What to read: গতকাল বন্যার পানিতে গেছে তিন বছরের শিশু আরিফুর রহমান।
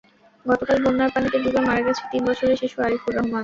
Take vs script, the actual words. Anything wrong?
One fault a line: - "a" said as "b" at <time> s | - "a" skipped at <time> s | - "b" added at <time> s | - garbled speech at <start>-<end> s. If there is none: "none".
- "ডুবে মারা" added at 1.4 s